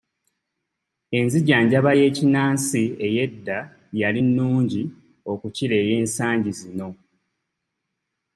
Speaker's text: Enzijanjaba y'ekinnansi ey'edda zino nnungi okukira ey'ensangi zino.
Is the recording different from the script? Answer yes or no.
yes